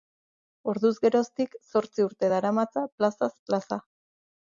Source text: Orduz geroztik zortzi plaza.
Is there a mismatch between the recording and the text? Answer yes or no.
yes